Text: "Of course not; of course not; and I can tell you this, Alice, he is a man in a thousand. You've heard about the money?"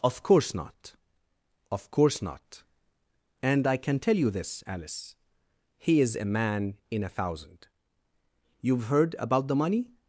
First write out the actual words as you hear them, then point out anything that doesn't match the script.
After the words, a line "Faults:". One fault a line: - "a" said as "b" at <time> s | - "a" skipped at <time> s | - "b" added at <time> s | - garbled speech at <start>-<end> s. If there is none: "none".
"Of course not; of course not; and I can tell you this, Alice, he is a man in a thousand. You've heard about the money?"
Faults:
none